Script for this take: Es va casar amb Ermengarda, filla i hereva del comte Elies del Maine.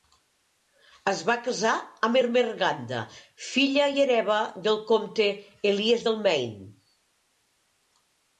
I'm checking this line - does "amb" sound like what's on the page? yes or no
yes